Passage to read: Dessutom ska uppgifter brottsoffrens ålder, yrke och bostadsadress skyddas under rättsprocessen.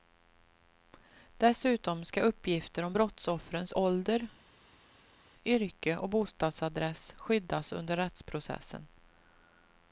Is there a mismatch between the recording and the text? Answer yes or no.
yes